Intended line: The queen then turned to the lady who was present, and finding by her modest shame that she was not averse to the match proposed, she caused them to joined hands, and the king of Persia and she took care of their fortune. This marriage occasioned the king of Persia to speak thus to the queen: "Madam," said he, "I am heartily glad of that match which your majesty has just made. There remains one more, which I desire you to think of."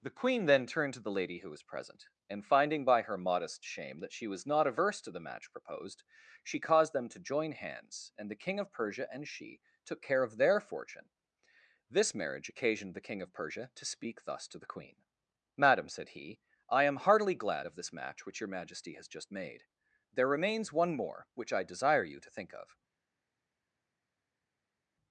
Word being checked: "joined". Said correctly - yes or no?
no